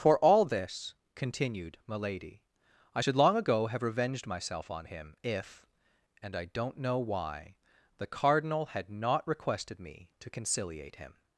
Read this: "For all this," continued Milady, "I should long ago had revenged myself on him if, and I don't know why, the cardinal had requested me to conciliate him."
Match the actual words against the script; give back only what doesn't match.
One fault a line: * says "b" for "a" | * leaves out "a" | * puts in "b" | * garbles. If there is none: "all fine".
* says "have" for "had"
* puts in "not"